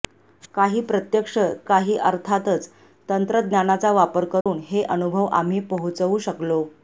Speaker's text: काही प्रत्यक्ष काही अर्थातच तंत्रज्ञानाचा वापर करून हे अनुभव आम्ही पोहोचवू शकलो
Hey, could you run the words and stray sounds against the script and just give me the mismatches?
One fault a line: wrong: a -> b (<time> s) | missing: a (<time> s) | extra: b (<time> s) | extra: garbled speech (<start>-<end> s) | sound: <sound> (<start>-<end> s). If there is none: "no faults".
sound: dropout (4.4-4.5 s)